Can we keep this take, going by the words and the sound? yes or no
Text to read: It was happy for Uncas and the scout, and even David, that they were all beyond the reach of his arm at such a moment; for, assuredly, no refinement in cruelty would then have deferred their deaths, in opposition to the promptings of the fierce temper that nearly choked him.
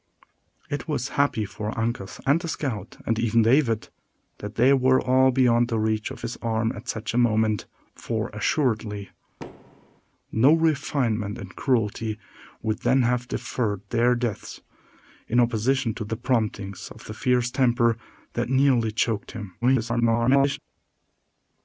no